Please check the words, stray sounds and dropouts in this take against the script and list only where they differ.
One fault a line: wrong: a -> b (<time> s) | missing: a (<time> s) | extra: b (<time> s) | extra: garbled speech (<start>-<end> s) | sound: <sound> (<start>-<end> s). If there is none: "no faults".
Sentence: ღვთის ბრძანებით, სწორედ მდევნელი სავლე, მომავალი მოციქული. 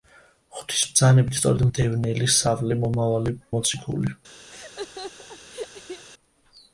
sound: laugh (4.5-6.0 s)